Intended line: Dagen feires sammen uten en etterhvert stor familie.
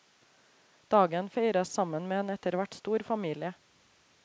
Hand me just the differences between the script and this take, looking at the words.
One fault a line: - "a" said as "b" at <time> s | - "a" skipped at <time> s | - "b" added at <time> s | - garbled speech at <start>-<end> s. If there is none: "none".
- "uten" said as "med" at 2.1 s